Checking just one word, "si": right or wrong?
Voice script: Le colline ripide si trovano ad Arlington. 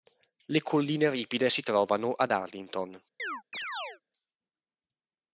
right